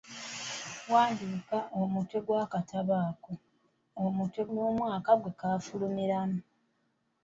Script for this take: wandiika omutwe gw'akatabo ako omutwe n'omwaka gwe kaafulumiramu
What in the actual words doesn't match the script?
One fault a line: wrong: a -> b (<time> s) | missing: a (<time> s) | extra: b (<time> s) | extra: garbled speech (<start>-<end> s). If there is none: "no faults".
no faults